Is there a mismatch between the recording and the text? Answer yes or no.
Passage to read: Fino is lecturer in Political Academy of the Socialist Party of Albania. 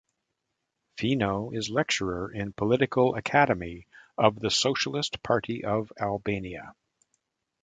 no